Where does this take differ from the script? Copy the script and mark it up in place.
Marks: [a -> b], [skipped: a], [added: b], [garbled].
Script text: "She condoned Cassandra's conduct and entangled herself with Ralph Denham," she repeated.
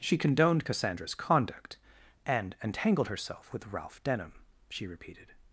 "She condoned Cassandra's conduct and entangled herself with Ralph Denham," she repeated.